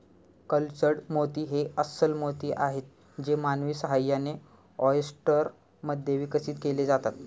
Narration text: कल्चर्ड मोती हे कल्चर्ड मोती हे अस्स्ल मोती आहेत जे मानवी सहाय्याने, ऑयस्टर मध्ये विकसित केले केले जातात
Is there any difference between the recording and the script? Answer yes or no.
yes